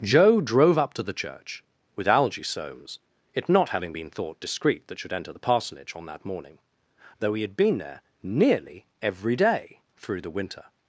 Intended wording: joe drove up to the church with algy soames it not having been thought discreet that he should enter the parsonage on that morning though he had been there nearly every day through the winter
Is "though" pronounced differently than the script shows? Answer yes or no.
no